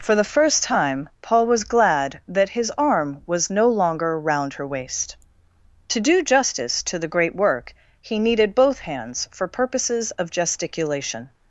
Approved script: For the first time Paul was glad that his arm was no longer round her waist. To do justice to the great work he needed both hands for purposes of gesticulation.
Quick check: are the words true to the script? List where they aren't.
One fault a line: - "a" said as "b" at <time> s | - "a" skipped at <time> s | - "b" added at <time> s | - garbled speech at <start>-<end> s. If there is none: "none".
none